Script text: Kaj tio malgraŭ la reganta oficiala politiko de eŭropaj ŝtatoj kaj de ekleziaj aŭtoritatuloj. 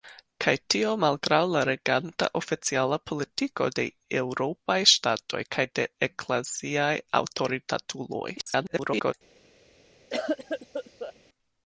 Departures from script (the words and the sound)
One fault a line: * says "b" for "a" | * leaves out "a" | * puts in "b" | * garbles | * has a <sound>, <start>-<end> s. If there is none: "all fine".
* garbles
* has a cough, 10.1-11.1 s